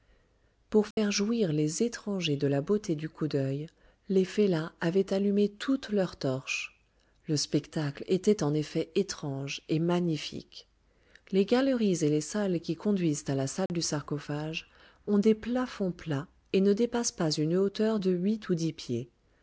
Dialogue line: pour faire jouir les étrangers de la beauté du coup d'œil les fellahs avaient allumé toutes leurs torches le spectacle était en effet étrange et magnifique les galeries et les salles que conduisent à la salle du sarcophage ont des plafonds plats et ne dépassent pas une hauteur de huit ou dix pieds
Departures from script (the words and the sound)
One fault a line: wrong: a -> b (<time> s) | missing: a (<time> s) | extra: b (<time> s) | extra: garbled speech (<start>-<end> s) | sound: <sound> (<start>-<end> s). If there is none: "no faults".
sound: dropout (0.9-1.0 s)
wrong: que -> qui (12.6 s)
sound: dropout (13.7-13.7 s)